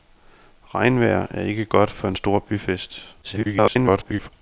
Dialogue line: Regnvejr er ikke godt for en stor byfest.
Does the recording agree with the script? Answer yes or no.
no